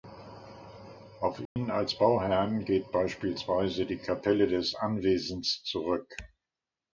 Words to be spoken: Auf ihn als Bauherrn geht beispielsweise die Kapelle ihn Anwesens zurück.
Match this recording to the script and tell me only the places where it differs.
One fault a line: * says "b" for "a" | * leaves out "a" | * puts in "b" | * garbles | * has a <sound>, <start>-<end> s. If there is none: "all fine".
* has a dropout, 1.5-1.6 s
* says "des" for "ihn"